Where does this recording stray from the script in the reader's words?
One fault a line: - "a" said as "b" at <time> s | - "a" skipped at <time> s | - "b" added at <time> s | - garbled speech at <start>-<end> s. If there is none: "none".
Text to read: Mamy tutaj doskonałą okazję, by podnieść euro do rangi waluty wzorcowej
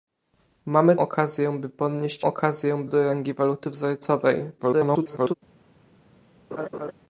- "tutaj doskonałą" skipped at 0.9 s
- "euro" said as "okazję" at 2.2 s
- garbled speech at 4.6-5.3 s